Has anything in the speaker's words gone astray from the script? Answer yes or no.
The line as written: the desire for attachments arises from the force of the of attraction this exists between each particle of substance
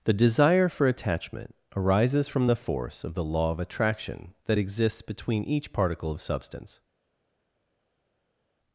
yes